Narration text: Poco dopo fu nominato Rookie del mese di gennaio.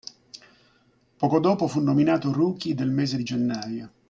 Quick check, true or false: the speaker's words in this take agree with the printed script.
true